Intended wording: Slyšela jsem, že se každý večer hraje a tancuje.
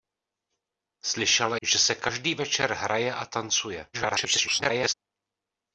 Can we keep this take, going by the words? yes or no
no